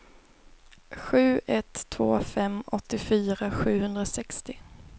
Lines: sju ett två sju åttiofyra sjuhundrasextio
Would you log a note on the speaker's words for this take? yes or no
yes